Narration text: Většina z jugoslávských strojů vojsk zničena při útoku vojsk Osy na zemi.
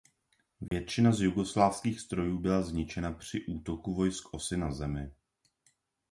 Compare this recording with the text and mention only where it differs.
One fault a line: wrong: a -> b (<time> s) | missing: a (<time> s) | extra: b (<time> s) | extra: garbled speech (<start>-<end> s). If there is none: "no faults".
wrong: vojsk -> byla (2.4 s)